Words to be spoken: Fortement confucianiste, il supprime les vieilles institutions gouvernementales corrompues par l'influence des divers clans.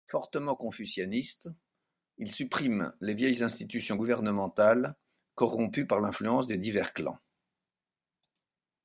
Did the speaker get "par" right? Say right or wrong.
right